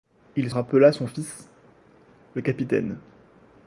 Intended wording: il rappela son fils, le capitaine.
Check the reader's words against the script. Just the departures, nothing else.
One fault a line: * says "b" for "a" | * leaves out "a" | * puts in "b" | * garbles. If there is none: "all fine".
all fine